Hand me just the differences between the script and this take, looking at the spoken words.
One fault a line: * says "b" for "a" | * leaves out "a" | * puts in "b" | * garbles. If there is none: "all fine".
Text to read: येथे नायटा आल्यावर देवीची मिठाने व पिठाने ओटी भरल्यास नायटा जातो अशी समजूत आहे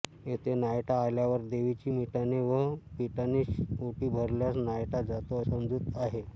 * leaves out "अशी"